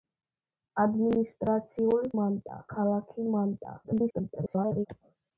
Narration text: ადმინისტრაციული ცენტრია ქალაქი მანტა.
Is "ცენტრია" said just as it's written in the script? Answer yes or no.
no